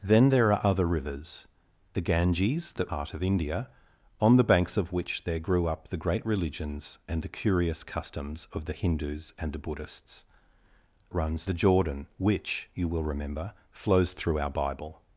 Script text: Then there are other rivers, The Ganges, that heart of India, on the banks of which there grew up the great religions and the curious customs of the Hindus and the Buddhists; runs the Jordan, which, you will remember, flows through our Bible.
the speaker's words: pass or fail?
pass